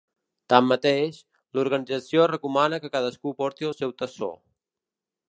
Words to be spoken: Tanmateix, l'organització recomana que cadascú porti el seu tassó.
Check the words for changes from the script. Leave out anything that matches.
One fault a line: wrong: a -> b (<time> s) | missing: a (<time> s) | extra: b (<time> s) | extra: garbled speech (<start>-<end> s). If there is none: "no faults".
no faults